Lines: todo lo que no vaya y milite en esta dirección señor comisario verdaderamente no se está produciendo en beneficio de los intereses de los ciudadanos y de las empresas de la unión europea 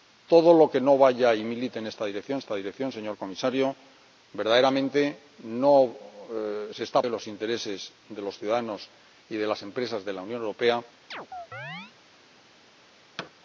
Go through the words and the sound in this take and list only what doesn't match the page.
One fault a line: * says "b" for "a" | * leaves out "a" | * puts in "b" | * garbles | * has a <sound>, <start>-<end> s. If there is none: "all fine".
* puts in "esta dirección"
* leaves out "produciendo en beneficio"
* has a chirp, 11.1-11.9 s
* has a thud, 13.2-13.3 s